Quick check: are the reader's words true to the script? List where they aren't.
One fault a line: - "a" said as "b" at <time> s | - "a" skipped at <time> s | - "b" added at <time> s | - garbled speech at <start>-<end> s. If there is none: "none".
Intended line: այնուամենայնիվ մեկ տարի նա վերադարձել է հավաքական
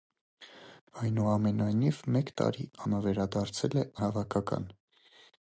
none